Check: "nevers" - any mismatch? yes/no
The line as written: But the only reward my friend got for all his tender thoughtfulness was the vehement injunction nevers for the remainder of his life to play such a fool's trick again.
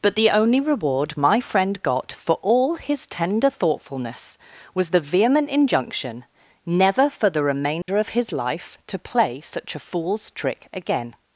yes